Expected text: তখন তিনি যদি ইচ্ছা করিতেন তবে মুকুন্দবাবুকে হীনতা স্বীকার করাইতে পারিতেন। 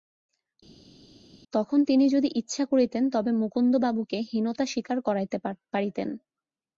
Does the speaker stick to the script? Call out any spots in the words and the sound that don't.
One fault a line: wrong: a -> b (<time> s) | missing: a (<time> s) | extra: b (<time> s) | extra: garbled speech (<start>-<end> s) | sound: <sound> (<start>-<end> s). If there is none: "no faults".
no faults